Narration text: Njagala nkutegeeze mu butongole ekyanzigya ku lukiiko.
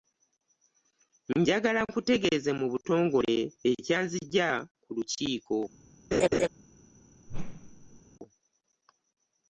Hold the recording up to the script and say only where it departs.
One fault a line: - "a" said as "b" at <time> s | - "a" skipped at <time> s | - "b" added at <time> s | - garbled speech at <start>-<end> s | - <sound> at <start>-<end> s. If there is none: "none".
- laugh at 6.1-6.5 s
- whoosh at 7.3-8.0 s